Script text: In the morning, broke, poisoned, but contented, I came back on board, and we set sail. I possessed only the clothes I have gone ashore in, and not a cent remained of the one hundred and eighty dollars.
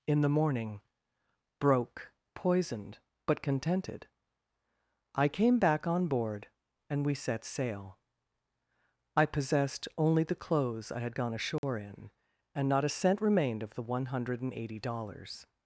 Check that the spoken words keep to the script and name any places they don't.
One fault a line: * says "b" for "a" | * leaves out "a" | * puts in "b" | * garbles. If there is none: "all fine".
* says "had" for "have"